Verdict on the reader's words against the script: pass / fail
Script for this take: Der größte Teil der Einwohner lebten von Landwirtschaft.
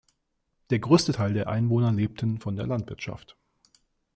fail